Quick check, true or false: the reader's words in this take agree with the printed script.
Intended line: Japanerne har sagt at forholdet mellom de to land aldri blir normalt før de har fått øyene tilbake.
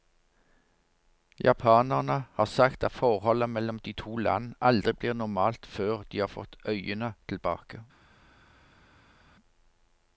true